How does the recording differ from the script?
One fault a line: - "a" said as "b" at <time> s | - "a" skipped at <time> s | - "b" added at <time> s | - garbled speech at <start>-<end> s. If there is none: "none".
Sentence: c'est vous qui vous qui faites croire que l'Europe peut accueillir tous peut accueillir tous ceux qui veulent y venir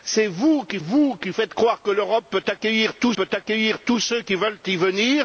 none